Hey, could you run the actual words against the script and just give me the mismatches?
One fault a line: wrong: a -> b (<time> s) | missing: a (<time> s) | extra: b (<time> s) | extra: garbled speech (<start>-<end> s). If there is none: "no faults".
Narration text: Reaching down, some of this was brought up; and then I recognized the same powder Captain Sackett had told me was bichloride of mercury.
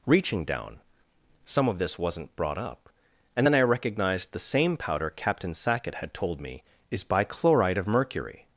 wrong: was -> wasn't (2.0 s)
wrong: was -> is (6.9 s)